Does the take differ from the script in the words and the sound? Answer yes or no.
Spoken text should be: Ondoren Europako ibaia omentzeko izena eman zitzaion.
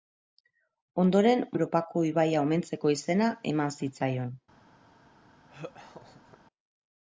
yes